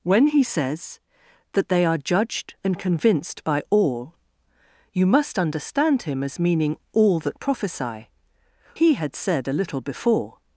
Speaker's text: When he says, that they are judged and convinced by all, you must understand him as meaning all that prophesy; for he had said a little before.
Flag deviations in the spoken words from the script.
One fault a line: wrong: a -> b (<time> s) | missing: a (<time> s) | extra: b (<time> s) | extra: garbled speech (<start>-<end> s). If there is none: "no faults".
missing: for (8.1 s)